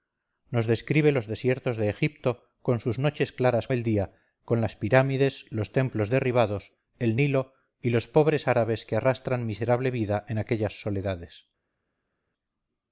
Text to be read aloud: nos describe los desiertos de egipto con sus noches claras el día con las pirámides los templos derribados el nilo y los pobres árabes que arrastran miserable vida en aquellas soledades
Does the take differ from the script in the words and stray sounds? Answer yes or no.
no